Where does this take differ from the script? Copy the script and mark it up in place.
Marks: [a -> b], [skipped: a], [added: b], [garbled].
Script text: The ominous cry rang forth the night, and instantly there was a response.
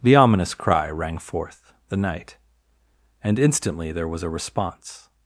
The ominous cry rang forth the night, and instantly there was a response.